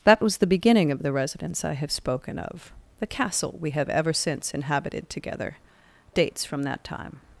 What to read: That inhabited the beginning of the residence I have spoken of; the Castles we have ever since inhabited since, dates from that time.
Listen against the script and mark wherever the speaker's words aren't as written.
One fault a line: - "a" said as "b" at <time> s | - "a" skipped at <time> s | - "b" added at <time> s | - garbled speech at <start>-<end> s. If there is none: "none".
- "inhabited" said as "was" at 0.2 s
- "Castles" said as "Castle" at 3.1 s
- "since" said as "together" at 5.1 s